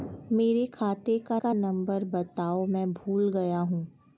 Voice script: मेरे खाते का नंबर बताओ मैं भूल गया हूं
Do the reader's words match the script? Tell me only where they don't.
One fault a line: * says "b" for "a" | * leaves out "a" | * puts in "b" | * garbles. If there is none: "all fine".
* puts in "का"